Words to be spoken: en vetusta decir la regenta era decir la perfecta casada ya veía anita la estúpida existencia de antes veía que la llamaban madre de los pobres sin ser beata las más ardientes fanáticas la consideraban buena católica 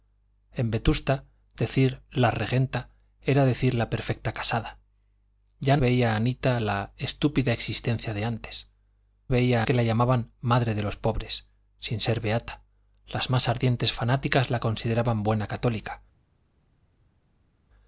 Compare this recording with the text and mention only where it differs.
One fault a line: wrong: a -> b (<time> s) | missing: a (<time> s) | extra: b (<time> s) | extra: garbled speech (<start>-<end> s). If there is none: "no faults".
no faults